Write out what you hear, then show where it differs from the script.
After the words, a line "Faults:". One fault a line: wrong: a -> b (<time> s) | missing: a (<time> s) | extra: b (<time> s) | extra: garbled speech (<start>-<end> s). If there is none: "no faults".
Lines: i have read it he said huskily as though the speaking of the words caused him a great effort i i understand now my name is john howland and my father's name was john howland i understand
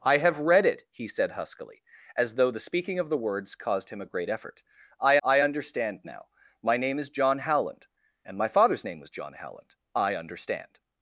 i have read it he said huskily as though the speaking of the words caused him a great effort i i understand now my name is john howland and my father's name was john howland i understand
Faults:
no faults